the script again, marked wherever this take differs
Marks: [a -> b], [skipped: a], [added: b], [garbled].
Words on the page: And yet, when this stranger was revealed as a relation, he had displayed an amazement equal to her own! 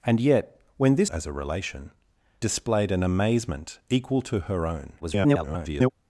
And yet, when this [skipped: stranger was revealed] as a relation, [skipped: he had] displayed an amazement equal to her own! [garbled]